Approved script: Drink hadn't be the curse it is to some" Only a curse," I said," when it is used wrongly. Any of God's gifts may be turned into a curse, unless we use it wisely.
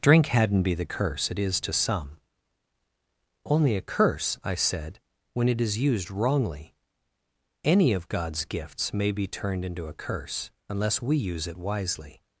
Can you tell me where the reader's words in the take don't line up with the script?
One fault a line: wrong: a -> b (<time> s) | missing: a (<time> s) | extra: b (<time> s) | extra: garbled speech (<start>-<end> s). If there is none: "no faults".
no faults